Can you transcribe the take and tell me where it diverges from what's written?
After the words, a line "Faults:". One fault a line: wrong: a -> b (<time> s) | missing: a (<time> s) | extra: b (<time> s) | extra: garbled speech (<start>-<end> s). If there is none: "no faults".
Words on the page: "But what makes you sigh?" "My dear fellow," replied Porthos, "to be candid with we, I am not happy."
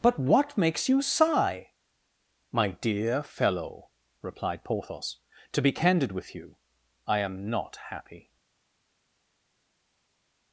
"But what makes you sigh?" "My dear fellow," replied Porthos, "to be candid with you, I am not happy."
Faults:
wrong: we -> you (6.3 s)